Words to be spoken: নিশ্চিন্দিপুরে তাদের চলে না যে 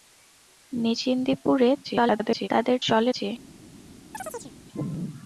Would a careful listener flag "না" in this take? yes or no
yes